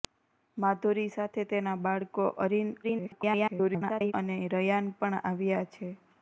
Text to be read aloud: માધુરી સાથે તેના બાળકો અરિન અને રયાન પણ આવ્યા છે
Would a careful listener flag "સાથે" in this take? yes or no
no